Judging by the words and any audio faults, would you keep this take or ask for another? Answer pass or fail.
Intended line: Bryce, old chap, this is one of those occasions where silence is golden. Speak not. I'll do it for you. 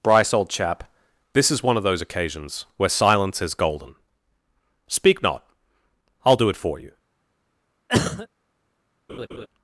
fail